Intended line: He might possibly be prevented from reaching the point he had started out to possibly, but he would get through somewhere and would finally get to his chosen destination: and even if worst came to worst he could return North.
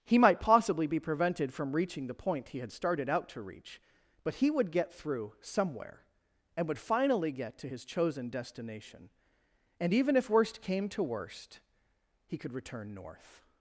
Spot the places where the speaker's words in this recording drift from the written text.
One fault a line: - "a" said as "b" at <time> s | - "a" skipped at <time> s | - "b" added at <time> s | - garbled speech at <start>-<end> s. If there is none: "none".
- "possibly" said as "reach" at 3.4 s